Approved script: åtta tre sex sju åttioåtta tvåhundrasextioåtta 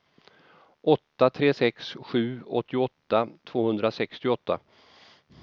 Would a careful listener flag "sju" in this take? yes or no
no